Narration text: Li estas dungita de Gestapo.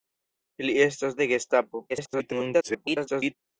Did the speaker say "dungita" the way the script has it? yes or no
no